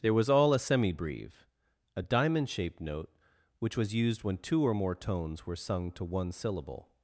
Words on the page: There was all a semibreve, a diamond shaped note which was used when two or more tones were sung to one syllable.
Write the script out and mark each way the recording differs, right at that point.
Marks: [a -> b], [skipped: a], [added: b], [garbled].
There was all a semibreve, a diamond shaped note which was used when two or more tones were sung to one syllable.